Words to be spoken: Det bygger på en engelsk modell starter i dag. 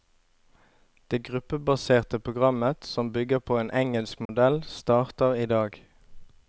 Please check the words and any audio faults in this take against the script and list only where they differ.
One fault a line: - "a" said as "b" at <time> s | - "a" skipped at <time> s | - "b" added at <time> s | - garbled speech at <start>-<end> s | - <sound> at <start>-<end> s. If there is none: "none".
- "gruppebaserte programmet som" added at 1.2 s
- dropout at 4.3-4.3 s